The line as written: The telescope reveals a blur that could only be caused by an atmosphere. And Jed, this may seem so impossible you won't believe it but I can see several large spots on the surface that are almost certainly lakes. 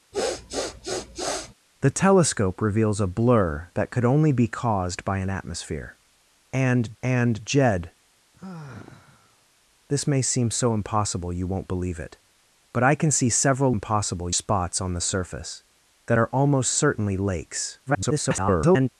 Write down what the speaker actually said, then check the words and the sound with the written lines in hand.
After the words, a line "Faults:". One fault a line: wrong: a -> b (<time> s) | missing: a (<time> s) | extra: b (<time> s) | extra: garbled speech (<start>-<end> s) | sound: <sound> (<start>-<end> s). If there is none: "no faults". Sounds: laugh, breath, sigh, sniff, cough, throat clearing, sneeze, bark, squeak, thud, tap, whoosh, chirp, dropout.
The telescope reveals a blur that could only be caused by an atmosphere. And and Jed, this may seem so impossible you won't believe it but I can see several impossible spots on the surface that are almost certainly lakes. [garbled]
Faults:
sound: sniff (0.1-1.5 s)
extra: and (7.0 s)
sound: sigh (8.3-9.5 s)
wrong: large -> impossible (13.7 s)
extra: garbled speech (17.9-18.9 s)